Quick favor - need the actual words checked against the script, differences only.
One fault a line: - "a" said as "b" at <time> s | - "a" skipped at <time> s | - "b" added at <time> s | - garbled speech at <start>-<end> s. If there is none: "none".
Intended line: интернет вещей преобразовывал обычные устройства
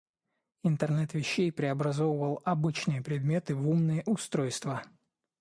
- "предметы в умные" added at 3.0 s